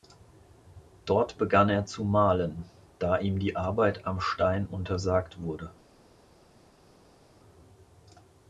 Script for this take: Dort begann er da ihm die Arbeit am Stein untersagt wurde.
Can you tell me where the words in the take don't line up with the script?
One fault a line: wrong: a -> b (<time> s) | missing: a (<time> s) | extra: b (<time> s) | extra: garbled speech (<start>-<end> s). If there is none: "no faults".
extra: zu malen (1.9 s)